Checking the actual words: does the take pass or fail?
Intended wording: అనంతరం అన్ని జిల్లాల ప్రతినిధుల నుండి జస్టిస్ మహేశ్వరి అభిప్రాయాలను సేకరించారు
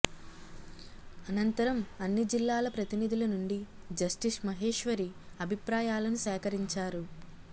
pass